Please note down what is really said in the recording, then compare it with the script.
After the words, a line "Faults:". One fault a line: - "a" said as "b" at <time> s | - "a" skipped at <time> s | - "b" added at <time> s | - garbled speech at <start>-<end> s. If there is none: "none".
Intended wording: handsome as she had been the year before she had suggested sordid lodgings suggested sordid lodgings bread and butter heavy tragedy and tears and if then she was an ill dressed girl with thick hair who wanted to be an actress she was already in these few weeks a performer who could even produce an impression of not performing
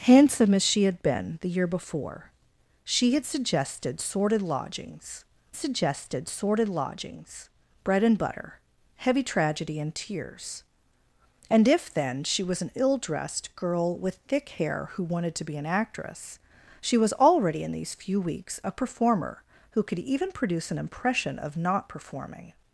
handsome as she had been the year before she had suggested sordid lodgings suggested sordid lodgings bread and butter heavy tragedy and tears and if then she was an ill dressed girl with thick hair who wanted to be an actress she was already in these few weeks a performer who could even produce an impression of not performing
Faults:
none